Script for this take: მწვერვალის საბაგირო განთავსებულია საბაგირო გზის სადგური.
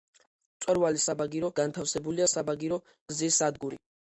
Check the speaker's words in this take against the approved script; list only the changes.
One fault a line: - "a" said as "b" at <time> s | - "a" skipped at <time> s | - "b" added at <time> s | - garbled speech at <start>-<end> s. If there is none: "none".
none